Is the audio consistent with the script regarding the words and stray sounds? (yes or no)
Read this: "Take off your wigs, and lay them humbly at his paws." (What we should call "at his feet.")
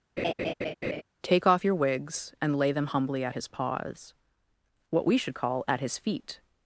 no